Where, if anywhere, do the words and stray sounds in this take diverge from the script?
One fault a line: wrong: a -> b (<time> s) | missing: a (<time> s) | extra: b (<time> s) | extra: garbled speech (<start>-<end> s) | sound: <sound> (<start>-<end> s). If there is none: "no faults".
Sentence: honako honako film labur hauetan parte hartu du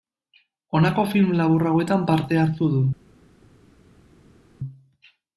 missing: honako (1.1 s)